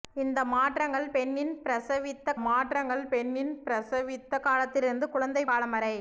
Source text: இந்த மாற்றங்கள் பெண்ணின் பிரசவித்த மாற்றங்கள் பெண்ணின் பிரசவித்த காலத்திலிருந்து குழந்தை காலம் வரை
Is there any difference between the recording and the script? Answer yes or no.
no